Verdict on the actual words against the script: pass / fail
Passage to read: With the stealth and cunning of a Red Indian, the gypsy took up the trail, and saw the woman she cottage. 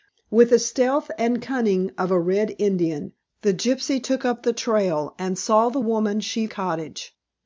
pass